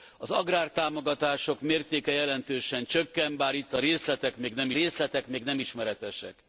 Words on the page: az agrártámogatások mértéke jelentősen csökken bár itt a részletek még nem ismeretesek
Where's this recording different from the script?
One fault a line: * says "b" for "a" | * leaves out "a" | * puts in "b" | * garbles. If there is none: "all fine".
* puts in "részletek még nem"